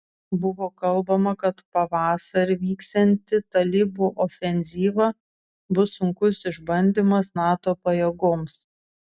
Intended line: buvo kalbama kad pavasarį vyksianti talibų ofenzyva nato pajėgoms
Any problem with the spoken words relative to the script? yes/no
yes